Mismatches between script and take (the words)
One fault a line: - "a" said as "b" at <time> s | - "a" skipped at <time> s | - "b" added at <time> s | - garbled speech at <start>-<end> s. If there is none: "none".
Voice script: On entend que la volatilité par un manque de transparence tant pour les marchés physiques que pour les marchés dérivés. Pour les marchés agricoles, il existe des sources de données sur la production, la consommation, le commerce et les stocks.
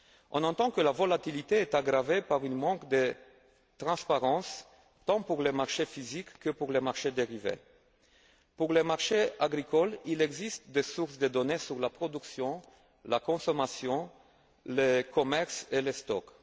- "est aggravée" added at 1.6 s